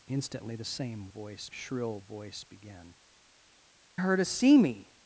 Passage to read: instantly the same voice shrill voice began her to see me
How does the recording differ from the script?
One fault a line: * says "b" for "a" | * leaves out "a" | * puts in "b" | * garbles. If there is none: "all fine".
all fine